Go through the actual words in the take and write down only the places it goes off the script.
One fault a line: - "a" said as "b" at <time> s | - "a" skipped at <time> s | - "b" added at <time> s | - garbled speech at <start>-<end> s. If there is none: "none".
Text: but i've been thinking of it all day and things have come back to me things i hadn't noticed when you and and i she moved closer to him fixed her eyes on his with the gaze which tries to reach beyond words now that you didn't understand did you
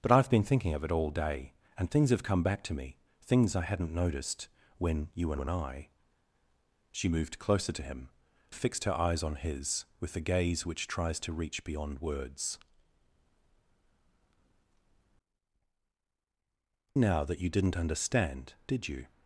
none